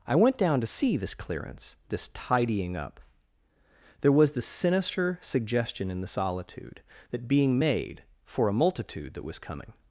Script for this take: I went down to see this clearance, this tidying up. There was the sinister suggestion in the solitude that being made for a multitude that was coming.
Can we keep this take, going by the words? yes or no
yes